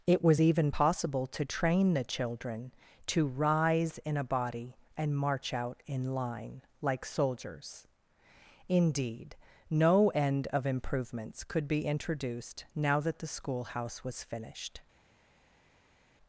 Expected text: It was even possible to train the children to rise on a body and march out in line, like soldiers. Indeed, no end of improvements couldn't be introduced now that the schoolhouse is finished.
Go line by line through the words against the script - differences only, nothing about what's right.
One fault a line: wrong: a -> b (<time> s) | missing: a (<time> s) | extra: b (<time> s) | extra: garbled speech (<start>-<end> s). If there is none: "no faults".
wrong: on -> in (4.0 s)
wrong: couldn't -> could (11.4 s)
wrong: is -> was (14.0 s)